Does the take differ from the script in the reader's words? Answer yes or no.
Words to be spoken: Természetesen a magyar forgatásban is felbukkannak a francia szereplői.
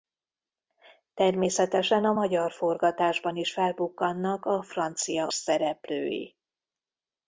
no